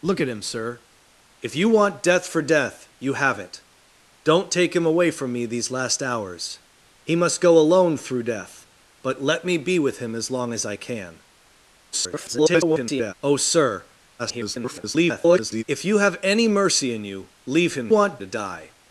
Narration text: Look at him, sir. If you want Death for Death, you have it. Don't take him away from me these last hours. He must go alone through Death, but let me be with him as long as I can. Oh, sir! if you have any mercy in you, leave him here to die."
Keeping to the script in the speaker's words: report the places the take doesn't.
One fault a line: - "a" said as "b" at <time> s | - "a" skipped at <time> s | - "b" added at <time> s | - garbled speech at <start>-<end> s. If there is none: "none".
- garbled speech at 11.9-13.1 s
- garbled speech at 14.2-15.6 s
- "here" said as "want" at 17.9 s